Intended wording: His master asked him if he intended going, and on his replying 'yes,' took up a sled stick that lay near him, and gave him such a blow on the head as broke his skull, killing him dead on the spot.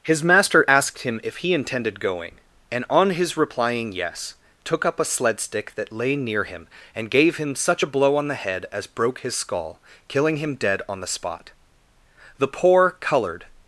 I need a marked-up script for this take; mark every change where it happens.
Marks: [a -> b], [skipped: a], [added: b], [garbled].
His master asked him if he intended going, and on his replying 'yes,' took up a sled stick that lay near him, and gave him such a blow on the head as broke his skull, killing him dead on the spot. [added: The poor colored]